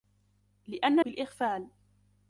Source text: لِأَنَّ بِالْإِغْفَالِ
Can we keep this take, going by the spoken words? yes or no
yes